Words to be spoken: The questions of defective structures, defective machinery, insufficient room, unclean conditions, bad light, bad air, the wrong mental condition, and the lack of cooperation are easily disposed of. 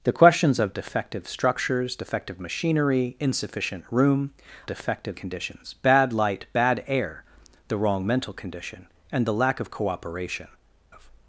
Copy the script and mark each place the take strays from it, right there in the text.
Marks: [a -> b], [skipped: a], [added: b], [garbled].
The questions of defective structures, defective machinery, insufficient room, [unclean -> defective] conditions, bad light, bad air, the wrong mental condition, and the lack of cooperation [skipped: are easily disposed] of.